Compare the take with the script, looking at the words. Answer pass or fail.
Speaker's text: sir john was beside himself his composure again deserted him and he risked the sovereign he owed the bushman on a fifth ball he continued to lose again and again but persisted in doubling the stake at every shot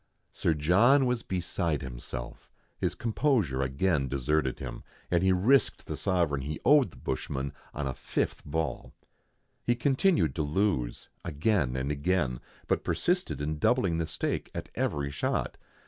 pass